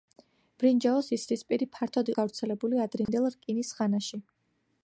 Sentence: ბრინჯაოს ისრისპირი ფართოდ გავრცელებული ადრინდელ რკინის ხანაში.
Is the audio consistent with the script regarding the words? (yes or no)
yes